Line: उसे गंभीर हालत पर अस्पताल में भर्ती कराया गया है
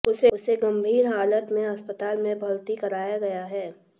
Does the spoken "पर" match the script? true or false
false